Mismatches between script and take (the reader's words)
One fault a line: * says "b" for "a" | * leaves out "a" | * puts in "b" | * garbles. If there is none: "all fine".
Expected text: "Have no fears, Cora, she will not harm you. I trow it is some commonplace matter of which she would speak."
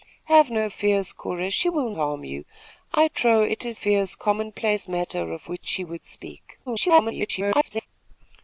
* leaves out "not"
* says "fears" for "some"
* garbles